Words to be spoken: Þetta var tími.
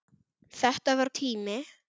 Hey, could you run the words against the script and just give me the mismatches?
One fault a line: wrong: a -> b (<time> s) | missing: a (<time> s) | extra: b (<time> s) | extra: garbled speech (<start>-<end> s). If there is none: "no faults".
no faults